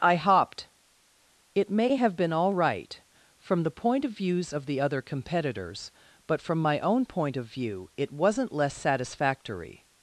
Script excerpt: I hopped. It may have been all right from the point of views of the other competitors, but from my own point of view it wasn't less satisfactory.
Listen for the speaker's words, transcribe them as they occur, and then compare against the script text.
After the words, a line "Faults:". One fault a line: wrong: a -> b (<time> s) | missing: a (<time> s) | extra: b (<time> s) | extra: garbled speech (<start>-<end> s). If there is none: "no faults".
I hopped. It may have been all right from the point of views of the other competitors, but from my own point of view it wasn't less satisfactory.
Faults:
no faults